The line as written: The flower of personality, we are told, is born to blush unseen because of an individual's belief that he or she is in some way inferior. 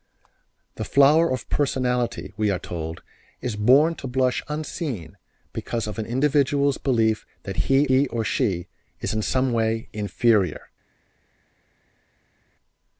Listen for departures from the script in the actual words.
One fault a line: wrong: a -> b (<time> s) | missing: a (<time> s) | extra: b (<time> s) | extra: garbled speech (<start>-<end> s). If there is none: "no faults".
extra: he (7.9 s)